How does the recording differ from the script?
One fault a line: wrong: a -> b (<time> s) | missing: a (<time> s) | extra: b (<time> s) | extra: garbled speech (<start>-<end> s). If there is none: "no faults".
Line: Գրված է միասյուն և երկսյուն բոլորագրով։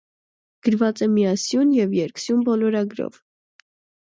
no faults